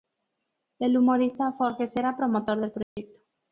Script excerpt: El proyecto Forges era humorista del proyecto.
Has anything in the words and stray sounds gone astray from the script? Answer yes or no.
yes